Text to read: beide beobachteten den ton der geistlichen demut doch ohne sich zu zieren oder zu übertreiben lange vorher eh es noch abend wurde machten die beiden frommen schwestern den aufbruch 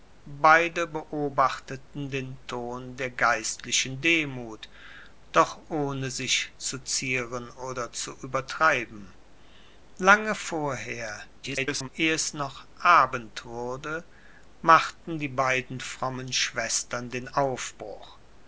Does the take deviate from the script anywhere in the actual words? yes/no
yes